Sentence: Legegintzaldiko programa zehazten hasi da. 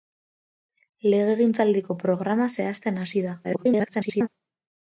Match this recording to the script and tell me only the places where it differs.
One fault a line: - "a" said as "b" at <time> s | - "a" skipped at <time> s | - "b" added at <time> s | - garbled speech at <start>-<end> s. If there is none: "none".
- garbled speech at 3.4-4.3 s